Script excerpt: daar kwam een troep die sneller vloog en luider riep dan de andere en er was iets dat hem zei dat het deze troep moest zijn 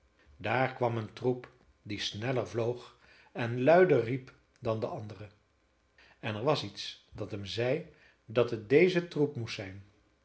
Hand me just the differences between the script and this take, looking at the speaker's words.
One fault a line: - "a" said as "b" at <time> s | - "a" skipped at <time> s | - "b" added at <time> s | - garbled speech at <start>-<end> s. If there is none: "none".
none